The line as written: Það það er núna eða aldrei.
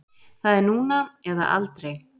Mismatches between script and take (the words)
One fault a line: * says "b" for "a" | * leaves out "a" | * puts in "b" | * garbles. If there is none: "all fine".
* leaves out "það"